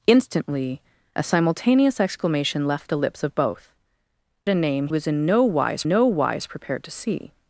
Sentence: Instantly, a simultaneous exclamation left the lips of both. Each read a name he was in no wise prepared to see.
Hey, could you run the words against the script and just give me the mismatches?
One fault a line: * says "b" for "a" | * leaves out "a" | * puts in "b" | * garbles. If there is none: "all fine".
* leaves out "Each read"
* leaves out "he"
* puts in "no wise"